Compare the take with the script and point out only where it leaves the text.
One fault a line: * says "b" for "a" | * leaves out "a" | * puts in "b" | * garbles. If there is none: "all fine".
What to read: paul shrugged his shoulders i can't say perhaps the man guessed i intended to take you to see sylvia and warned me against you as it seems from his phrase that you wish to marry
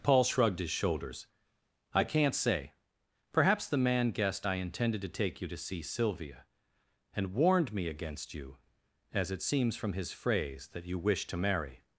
all fine